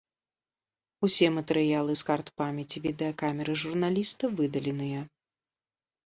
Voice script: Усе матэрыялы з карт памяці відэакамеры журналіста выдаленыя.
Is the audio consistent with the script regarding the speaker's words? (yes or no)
yes